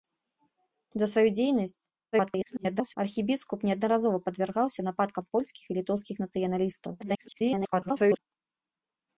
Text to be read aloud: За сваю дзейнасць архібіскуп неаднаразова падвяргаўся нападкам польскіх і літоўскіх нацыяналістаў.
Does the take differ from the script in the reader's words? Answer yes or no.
yes